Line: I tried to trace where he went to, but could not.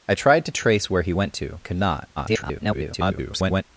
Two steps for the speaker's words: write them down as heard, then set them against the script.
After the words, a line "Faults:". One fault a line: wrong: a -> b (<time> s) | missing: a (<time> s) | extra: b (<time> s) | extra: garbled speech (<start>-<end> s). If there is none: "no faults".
I tried to trace where he went to, could not. [garbled]
Faults:
missing: but (1.6 s)
extra: garbled speech (2.2-3.6 s)